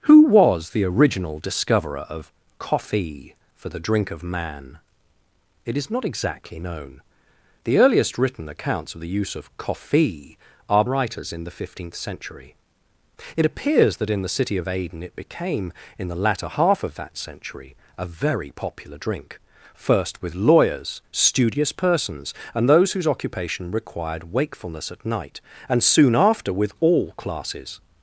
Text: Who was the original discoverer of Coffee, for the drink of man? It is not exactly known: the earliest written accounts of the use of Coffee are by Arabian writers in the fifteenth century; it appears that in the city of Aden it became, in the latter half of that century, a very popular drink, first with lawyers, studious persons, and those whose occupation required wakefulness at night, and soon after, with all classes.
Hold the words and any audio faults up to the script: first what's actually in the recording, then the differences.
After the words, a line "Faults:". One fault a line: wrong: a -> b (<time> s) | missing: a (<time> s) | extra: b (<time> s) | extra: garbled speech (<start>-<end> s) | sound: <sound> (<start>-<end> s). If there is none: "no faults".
Who was the original discoverer of Coffee, for the drink of man? It is not exactly known: the earliest written accounts of the use of Coffee are writers in the fifteenth century; it appears that in the city of Aden it became, in the latter half of that century, a very popular drink, first with lawyers, studious persons, and those whose occupation required wakefulness at night, and soon after, with all classes.
Faults:
missing: by Arabian (10.8 s)